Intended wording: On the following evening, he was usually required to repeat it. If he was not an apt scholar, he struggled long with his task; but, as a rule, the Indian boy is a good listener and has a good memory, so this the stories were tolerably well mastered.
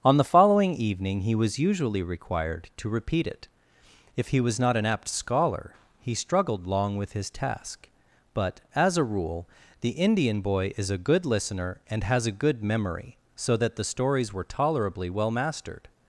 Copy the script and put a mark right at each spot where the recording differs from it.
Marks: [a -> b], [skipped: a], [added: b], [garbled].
On the following evening, he was usually required to repeat it. If he was not an apt scholar, he struggled long with his task; but, as a rule, the Indian boy is a good listener and has a good memory, so [this -> that] the stories were tolerably well mastered.